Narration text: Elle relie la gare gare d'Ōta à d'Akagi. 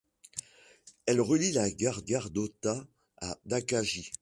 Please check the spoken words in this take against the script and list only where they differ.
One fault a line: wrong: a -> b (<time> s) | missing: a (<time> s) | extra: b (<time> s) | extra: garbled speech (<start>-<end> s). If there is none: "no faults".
no faults